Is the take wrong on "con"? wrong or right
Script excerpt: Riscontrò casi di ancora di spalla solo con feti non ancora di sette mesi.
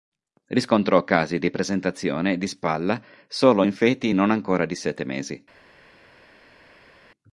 wrong